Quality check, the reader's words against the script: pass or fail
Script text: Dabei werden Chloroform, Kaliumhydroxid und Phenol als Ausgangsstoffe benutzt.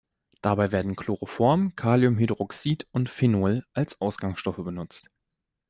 pass